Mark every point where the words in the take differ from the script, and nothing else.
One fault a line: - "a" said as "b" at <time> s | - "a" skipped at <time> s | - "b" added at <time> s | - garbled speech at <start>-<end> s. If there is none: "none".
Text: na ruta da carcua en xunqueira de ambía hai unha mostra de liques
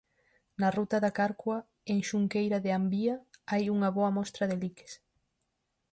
- "boa" added at 4.0 s